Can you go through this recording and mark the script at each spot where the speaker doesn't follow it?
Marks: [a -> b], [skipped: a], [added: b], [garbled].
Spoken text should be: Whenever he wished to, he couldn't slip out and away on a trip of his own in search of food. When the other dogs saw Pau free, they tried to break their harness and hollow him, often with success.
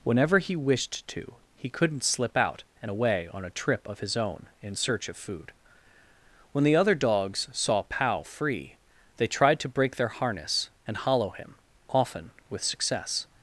Whenever he wished to, he couldn't slip out and away on a trip of his own in search of food. When the other dogs saw Pau free, they tried to break their harness and hollow him, often with success.